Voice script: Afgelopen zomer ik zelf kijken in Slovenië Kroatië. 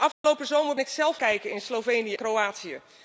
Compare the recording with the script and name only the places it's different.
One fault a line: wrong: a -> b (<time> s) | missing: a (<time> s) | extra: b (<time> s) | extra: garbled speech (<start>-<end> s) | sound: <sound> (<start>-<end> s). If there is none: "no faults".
sound: dropout (0.1-0.2 s)